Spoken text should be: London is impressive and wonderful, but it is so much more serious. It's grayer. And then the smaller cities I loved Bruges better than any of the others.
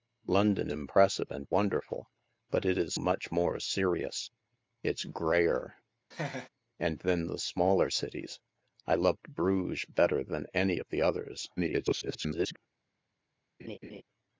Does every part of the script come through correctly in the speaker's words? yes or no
no